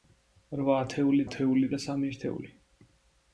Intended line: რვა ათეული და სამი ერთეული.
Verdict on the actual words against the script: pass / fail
fail